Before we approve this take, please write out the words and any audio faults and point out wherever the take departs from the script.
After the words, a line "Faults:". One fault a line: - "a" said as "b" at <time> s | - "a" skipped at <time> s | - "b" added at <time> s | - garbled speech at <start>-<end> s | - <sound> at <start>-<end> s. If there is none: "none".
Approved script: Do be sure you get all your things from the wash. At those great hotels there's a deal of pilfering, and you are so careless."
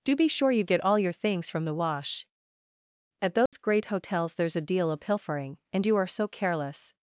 Do be sure you get all your things from the wash. At those great hotels there's a deal of pilfering, and you are so careless."
Faults:
- dropout at 3.5-3.5 s